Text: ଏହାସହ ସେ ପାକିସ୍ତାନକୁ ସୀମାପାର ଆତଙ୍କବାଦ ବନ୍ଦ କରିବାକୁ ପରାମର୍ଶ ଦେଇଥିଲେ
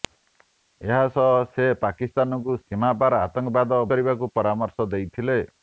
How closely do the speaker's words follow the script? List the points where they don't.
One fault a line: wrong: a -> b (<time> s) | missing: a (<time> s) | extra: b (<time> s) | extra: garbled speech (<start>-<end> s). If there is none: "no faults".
missing: ବନ୍ଦ (3.8 s)